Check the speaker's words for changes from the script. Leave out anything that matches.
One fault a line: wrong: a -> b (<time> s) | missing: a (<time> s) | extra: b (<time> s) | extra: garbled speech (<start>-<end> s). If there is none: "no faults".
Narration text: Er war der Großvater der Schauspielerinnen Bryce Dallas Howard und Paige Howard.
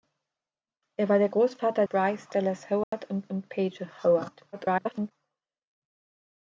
missing: der Schauspielerinnen (1.9 s)
extra: und (3.3 s)
extra: garbled speech (4.5-5.1 s)